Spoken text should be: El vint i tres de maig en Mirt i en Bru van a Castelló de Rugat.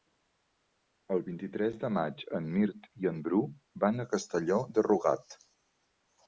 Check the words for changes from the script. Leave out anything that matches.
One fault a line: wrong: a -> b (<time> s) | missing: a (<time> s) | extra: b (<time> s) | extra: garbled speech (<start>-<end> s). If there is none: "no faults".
no faults